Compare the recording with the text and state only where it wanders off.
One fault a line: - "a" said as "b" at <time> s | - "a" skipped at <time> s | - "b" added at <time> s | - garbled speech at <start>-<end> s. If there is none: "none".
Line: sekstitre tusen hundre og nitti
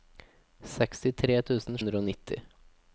none